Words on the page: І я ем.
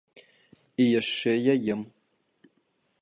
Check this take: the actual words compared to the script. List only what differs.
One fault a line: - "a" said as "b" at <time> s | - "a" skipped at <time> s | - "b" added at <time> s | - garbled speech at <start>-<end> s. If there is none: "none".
- "яшчэ" added at 1.0 s